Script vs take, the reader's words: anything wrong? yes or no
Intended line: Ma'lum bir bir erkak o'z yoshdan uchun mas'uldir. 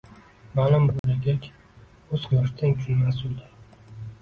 no